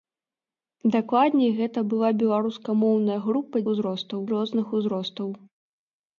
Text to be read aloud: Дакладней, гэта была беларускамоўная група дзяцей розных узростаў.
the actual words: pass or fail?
fail